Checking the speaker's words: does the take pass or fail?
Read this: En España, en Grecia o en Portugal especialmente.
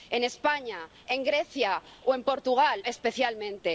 pass